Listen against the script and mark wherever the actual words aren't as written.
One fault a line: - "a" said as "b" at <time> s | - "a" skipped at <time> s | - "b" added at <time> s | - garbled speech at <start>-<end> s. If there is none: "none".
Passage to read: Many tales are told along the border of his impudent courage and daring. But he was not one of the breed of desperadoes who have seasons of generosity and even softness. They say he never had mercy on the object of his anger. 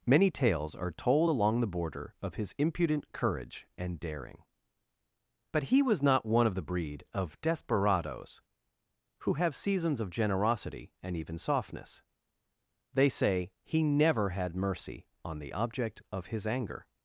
none